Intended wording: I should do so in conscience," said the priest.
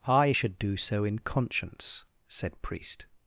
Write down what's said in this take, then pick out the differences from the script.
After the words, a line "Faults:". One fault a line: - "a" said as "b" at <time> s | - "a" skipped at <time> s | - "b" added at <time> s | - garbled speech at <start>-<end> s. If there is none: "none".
I should do so in conscience," said priest.
Faults:
- "the" skipped at 2.6 s